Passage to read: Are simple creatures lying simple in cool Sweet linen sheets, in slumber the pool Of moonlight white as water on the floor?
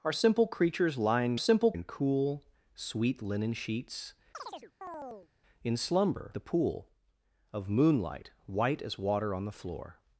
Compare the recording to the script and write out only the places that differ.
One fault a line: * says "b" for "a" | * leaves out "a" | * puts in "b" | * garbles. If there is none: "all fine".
all fine